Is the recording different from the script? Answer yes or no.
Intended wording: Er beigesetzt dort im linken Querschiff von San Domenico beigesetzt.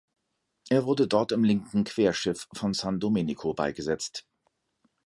yes